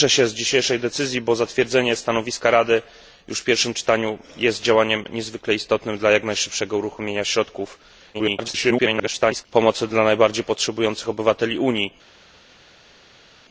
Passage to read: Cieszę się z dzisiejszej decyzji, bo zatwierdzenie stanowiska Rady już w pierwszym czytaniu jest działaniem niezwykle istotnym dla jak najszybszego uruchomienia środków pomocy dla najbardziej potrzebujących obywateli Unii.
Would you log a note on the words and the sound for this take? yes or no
yes